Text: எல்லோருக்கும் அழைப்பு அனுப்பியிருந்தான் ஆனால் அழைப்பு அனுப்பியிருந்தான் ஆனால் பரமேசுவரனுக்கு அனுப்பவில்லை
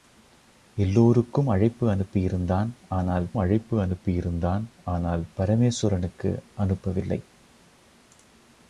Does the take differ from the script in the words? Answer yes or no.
no